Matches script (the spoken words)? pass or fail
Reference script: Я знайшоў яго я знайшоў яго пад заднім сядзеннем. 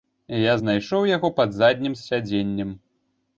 fail